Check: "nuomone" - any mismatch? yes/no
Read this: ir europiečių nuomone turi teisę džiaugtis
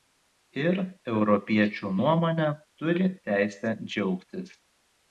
no